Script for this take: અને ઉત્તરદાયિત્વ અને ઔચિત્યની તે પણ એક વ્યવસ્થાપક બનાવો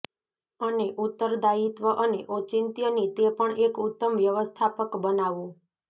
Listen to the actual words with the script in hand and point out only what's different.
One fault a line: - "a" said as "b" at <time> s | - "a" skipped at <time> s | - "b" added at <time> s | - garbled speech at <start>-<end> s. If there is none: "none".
- "ઉત્તમ" added at 3.9 s